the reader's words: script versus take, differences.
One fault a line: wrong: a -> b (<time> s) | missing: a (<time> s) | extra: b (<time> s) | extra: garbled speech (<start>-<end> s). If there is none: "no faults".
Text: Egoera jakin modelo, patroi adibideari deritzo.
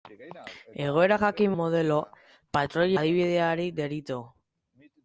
no faults